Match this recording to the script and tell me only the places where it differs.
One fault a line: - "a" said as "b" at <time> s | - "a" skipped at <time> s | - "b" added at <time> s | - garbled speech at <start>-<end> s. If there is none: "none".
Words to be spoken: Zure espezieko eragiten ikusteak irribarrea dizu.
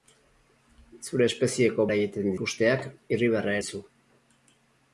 none